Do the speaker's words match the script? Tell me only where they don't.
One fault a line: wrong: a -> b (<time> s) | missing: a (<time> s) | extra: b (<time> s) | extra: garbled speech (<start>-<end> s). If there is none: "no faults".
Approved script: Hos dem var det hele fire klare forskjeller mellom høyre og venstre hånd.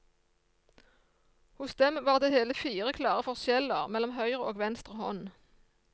no faults